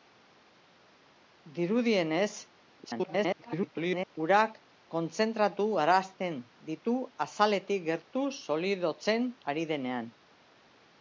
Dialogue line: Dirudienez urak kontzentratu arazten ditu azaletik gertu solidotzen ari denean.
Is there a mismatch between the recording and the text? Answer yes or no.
yes